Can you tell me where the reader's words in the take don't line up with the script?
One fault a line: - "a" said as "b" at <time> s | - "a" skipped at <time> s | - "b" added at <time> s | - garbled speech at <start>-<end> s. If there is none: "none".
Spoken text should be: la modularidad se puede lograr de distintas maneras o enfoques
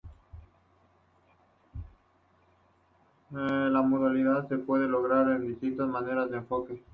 none